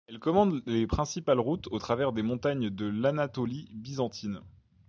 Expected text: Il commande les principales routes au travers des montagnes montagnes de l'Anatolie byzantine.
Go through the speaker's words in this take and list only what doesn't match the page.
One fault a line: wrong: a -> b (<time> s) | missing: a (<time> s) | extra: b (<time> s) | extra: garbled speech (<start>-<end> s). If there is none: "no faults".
wrong: Il -> Elle (0.1 s)
missing: montagnes (2.7 s)